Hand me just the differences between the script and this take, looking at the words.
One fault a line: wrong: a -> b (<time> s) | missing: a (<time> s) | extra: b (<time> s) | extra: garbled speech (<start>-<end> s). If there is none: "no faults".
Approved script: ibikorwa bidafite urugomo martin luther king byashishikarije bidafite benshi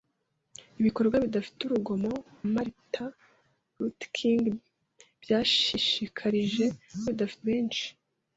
no faults